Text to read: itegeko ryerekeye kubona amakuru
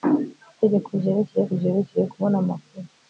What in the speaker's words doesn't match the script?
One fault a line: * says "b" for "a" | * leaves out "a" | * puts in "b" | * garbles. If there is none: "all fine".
* puts in "ryerekeye"